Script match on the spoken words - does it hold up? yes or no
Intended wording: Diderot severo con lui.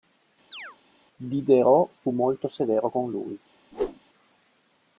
no